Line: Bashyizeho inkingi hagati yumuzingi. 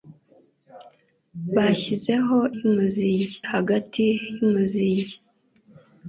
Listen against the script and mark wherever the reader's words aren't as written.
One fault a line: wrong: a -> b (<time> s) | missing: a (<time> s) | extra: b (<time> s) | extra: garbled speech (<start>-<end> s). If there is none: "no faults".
wrong: inkingi -> yumuzingi (2.6 s)